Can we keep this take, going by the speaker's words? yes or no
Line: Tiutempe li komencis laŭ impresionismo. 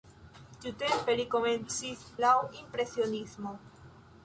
yes